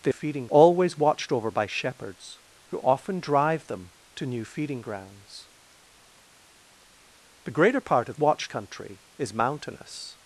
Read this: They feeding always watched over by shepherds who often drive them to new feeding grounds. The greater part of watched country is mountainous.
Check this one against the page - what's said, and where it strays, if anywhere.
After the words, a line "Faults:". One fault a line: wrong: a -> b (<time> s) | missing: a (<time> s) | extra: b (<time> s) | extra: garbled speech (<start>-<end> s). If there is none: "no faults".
They feeding always watched over by shepherds who often drive them to new feeding grounds. The greater part of watched country is mountainous.
Faults:
no faults